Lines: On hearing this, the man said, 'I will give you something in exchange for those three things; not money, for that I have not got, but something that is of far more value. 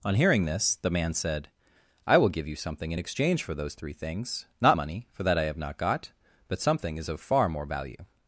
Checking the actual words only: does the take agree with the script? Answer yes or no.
no